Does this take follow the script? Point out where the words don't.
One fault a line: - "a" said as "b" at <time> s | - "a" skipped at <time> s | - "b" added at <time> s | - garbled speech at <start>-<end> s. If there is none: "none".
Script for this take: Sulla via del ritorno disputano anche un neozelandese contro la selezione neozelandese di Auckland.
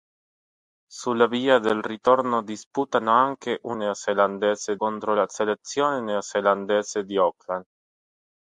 none